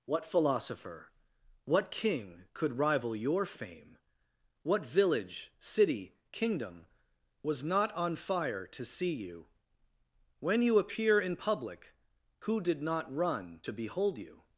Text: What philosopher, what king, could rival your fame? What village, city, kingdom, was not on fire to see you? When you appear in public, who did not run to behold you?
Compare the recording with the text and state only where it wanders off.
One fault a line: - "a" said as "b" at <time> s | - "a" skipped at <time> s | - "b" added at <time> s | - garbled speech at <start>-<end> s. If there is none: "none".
none